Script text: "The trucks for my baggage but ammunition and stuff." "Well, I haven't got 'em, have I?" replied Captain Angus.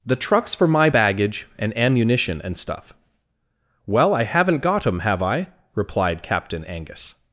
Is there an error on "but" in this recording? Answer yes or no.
yes